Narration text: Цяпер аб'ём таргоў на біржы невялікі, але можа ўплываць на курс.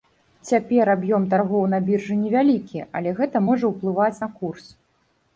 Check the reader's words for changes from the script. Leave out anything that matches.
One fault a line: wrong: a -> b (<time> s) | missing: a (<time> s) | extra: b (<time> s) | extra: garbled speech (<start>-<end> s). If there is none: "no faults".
extra: гэта (3.2 s)